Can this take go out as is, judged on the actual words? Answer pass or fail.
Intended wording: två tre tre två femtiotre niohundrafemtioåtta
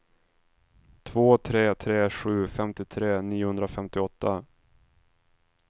fail